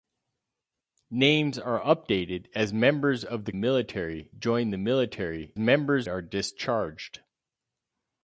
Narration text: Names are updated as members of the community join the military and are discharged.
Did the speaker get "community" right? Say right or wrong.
wrong